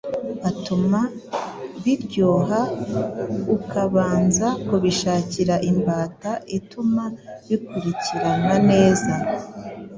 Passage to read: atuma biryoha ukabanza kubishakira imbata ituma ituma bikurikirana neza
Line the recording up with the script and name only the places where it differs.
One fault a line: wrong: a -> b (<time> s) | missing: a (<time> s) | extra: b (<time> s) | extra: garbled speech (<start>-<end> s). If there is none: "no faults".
missing: ituma (7.0 s)